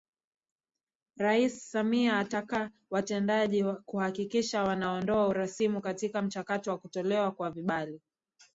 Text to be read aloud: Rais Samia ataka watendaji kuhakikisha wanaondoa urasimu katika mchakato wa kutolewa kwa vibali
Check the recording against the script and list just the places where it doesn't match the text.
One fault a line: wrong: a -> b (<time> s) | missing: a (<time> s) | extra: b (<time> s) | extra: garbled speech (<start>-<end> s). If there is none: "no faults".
no faults